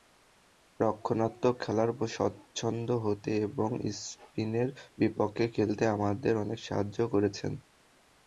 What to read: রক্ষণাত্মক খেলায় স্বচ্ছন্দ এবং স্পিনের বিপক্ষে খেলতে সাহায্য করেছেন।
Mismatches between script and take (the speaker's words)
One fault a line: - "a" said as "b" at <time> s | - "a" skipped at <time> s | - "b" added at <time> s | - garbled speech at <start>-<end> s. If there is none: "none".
- "হতে" added at 3.0 s
- "আমাদের অনেক" added at 6.0 s